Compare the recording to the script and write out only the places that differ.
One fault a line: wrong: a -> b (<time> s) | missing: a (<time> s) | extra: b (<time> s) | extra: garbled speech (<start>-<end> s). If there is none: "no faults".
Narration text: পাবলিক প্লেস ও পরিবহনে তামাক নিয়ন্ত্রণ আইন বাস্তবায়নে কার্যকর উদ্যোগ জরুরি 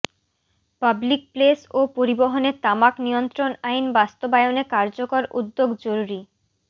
no faults